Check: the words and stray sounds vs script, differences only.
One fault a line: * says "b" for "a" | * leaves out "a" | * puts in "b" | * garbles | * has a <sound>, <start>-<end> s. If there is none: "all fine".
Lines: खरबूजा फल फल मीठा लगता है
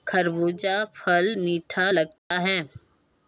* leaves out "फल"
* has a dropout, 2.2-2.3 s